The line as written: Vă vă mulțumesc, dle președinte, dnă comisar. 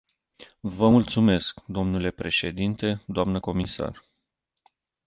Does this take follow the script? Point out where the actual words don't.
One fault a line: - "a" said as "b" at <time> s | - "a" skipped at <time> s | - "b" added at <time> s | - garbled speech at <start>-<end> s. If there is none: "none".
- "vă" skipped at 0.9 s